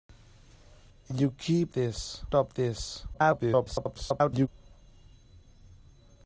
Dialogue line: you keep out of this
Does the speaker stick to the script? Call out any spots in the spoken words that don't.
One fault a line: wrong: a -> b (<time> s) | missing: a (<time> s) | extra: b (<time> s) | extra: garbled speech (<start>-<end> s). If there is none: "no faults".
wrong: out -> this (1.7 s)
extra: garbled speech (3.1-4.5 s)